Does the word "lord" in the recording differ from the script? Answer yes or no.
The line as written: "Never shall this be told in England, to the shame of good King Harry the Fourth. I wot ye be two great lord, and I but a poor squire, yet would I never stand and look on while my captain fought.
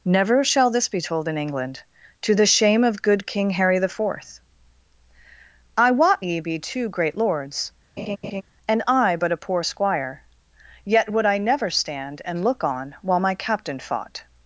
yes